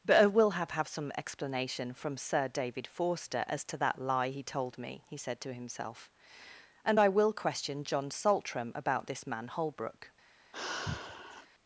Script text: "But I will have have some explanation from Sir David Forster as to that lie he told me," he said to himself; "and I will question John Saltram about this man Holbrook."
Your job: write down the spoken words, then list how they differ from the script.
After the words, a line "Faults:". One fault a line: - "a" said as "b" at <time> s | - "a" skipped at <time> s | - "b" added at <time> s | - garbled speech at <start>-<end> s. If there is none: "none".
"But I will have have some explanation from Sir David Forster as to that lie he told me," he said to himself; "and I will question John Saltram about this man Holbrook."
Faults:
none